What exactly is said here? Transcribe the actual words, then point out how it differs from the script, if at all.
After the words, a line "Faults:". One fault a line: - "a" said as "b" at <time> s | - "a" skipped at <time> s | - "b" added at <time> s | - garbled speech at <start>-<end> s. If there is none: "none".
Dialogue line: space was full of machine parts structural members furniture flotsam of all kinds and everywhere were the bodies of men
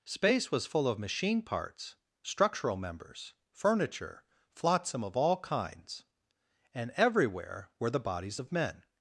space was full of machine parts structural members furniture flotsam of all kinds and everywhere were the bodies of men
Faults:
none